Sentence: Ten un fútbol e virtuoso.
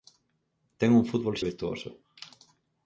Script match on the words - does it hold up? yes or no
yes